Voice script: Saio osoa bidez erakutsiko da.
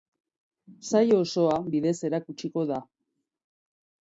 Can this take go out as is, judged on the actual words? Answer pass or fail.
pass